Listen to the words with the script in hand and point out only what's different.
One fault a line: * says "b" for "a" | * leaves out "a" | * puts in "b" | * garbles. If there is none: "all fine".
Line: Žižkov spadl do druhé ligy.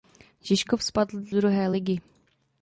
* leaves out "do"